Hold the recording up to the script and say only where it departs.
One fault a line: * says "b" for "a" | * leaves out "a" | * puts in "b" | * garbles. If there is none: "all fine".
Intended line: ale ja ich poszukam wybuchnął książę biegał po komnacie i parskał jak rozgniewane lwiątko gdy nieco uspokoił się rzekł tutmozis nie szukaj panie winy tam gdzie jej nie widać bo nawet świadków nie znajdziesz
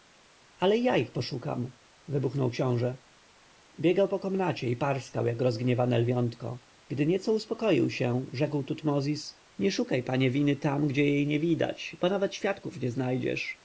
all fine